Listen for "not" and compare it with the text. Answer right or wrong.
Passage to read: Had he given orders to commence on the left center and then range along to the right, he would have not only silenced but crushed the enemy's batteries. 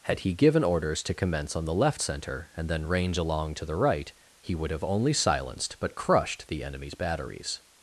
wrong